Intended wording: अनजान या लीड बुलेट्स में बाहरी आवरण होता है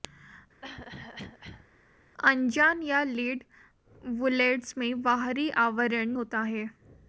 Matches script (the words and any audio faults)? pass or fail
fail